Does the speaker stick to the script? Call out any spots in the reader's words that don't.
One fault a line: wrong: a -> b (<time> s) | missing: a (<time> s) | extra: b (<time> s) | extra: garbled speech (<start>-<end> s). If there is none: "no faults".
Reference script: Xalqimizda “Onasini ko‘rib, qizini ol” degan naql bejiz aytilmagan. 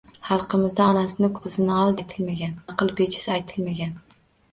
missing: ko‘rib (1.3 s)
wrong: degan -> aytilmagan (2.0 s)